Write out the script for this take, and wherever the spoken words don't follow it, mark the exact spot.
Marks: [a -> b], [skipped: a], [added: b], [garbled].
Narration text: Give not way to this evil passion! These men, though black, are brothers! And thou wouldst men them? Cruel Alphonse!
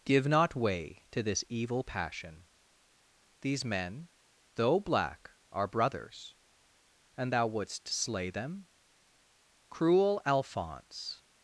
Give not way to this evil passion! These men, though black, are brothers! And thou wouldst [men -> slay] them? Cruel Alphonse!